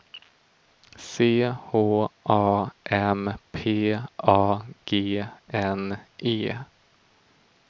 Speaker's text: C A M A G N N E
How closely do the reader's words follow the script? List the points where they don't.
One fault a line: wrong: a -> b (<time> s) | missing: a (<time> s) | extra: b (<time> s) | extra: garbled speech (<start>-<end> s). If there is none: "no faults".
extra: H (1.4 s)
extra: P (3.5 s)
missing: N (6.0 s)